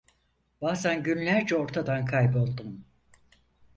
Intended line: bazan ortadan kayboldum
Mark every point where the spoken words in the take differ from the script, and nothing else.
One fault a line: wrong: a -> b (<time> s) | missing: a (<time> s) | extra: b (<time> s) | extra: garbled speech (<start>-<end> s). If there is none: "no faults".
extra: günlerce (1.0 s)